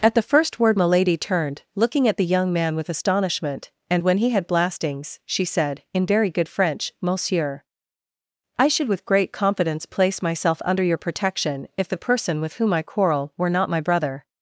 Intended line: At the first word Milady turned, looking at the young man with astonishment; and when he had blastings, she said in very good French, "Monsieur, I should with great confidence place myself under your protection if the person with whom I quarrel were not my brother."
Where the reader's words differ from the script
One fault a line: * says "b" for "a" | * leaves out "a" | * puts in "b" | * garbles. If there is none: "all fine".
all fine